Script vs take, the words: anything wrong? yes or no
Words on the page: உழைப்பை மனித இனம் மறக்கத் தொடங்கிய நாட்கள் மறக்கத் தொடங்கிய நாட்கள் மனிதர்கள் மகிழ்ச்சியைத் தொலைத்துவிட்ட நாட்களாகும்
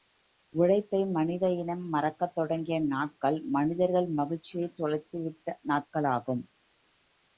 yes